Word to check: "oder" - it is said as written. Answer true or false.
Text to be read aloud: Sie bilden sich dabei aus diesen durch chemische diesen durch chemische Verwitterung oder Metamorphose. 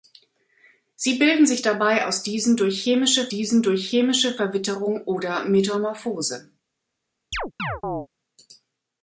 true